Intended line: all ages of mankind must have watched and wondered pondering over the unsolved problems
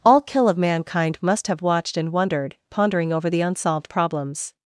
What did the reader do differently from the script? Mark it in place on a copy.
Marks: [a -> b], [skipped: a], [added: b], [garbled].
all [ages -> kill] of mankind must have watched and wondered pondering over the unsolved problems